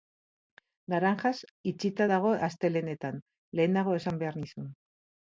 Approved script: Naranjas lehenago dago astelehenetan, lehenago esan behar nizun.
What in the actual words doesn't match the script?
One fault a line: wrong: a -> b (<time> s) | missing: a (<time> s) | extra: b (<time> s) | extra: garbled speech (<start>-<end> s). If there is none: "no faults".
wrong: lehenago -> itxita (1.7 s)